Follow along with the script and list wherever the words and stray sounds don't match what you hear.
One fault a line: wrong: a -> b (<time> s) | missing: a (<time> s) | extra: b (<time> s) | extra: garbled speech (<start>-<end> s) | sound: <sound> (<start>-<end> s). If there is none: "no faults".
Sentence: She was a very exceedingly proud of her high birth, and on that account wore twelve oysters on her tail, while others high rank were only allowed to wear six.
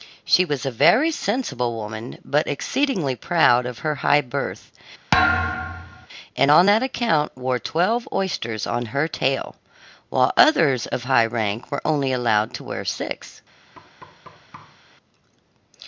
extra: sensible woman but (1.1 s)
sound: thud (5.1-6.1 s)
extra: of (10.9 s)
sound: thud (13.7-14.8 s)